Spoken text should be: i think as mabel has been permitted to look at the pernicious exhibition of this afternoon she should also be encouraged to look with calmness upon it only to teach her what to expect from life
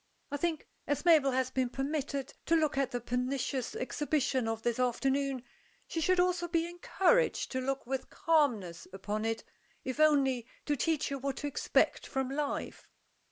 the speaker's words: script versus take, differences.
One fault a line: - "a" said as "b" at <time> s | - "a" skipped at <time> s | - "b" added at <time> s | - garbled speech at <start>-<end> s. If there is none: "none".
- "if" added at 9.8 s